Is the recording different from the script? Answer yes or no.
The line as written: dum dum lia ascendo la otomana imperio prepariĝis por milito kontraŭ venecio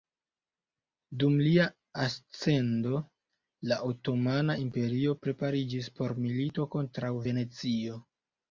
yes